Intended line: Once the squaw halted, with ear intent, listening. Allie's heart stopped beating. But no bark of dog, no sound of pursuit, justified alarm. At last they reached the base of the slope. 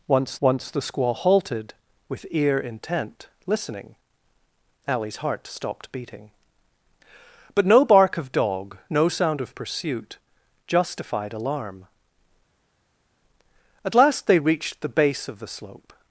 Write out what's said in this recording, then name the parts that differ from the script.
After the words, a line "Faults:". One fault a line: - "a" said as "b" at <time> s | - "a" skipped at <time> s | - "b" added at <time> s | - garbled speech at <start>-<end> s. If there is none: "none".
Once once the squaw halted, with ear intent, listening. Allie's heart stopped beating. But no bark of dog, no sound of pursuit, justified alarm. At last they reached the base of the slope.
Faults:
- "once" added at 0.4 s